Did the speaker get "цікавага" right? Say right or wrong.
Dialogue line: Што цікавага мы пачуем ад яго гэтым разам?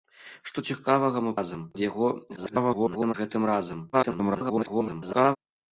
right